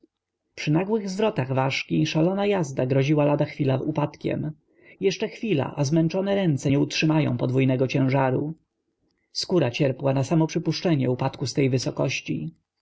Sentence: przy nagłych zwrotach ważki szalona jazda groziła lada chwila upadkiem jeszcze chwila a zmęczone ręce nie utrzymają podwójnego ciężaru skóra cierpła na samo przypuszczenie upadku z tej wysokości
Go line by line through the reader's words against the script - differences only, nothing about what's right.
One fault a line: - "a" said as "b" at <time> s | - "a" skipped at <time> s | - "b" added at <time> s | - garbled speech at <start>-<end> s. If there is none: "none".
none